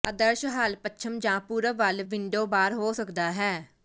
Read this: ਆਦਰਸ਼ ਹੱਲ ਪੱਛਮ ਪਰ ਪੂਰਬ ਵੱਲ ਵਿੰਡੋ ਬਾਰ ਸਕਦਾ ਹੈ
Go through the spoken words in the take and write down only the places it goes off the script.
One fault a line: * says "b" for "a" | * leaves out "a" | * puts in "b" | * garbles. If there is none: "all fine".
* says "ਜਾਂ" for "ਪਰ"
* puts in "ਹੋ"